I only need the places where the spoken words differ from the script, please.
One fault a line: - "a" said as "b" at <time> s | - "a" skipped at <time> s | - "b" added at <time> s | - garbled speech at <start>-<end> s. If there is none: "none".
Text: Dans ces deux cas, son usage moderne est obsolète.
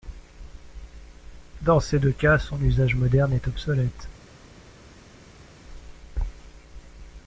none